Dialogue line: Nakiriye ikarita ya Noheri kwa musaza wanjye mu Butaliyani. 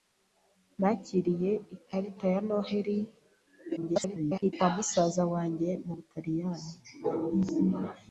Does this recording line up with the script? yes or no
no